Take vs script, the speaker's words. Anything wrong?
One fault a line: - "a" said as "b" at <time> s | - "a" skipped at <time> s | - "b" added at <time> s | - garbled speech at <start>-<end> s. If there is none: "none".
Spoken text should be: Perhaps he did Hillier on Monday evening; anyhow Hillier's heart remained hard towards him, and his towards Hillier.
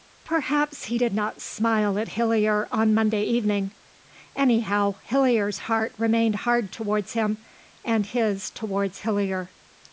- "not smile at" added at 1.1 s